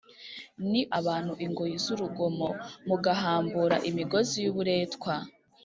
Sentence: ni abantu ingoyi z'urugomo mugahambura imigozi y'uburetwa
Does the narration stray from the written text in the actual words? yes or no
no